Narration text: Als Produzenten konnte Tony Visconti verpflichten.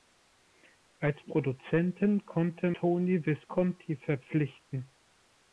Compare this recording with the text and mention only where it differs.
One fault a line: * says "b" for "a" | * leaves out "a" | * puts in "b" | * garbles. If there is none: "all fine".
all fine